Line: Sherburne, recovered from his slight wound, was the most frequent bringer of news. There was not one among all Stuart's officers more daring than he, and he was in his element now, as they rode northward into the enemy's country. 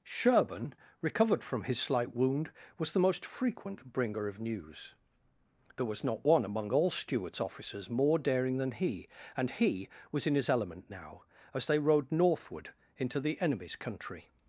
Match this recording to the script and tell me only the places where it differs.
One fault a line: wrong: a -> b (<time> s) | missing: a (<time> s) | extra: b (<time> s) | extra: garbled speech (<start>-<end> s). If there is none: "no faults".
no faults